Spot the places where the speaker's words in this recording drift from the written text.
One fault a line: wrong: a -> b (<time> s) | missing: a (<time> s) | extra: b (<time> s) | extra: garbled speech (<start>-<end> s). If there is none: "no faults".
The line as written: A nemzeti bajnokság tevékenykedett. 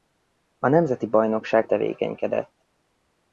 no faults